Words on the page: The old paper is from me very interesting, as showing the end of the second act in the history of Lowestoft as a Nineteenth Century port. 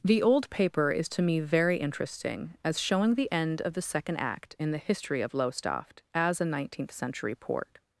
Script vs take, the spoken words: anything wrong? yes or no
yes